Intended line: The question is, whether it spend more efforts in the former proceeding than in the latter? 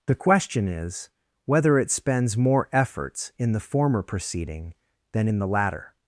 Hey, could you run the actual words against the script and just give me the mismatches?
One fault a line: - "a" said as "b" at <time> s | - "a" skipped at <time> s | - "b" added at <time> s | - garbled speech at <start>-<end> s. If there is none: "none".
- "spend" said as "spends" at 1.9 s